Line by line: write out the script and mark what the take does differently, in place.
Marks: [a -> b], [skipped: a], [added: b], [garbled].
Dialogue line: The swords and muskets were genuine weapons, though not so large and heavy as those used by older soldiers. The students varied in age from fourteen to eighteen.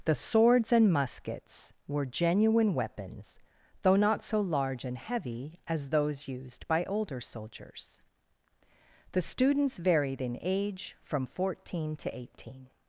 The swords and muskets were genuine weapons, though not so large and heavy as those used by older soldiers. The students varied in age from fourteen to eighteen.